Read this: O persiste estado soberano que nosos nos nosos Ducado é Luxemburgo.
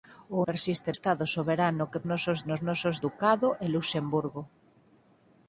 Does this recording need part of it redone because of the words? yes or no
no